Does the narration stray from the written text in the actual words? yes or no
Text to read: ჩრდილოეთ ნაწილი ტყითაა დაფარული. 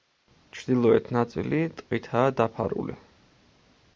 no